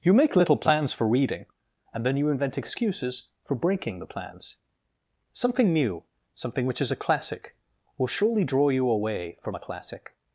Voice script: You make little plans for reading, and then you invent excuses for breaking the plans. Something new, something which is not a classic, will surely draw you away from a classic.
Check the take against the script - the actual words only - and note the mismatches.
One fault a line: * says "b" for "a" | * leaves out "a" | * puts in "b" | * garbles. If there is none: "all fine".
* leaves out "not"